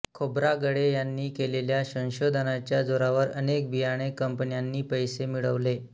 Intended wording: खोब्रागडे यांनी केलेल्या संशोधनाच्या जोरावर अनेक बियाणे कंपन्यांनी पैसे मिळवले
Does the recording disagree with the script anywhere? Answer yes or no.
no